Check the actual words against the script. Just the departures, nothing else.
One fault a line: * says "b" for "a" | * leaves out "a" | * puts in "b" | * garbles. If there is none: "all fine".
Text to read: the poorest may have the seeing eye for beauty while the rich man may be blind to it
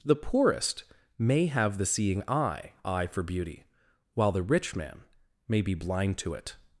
* puts in "eye"